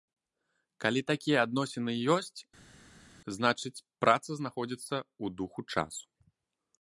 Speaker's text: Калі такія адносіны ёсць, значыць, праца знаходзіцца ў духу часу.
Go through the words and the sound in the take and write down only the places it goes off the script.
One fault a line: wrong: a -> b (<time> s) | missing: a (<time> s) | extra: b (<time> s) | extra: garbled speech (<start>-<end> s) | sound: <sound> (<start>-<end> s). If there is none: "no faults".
no faults